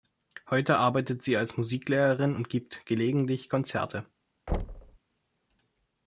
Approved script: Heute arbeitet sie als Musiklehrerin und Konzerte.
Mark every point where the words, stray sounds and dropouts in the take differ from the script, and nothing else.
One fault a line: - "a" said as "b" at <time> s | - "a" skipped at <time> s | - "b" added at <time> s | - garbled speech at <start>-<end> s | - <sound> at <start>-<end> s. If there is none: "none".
- "gibt gelegentlich" added at 2.5 s
- thud at 4.5-5.0 s